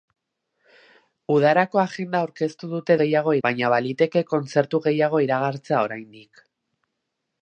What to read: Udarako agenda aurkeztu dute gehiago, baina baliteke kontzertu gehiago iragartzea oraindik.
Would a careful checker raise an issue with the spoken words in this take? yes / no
no